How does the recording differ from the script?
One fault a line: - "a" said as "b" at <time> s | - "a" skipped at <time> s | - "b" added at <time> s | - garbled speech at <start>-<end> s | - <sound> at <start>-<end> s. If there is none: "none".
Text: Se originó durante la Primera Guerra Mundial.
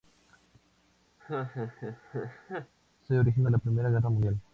- laugh at 1.2-2.7 s
- "durante" skipped at 3.5 s